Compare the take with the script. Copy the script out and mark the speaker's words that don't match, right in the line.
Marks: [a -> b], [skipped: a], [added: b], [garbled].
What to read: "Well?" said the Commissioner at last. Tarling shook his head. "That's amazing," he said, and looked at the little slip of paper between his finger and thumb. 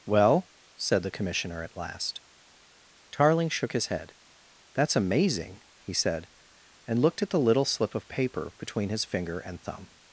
"Well?" said the Commissioner at last. Tarling shook his head. "That's amazing," he said, and looked at the little slip of paper between his finger and thumb.